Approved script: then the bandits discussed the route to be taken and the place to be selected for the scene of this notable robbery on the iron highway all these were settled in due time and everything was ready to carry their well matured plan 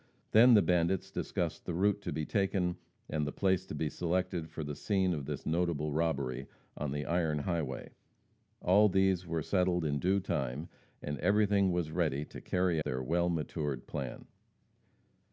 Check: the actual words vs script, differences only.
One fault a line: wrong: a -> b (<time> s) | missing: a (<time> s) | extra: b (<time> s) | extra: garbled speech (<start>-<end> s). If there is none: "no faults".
no faults